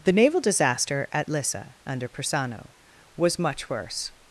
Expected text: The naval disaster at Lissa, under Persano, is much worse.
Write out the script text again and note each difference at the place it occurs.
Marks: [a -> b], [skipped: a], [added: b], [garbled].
The naval disaster at Lissa, under Persano, [is -> was] much worse.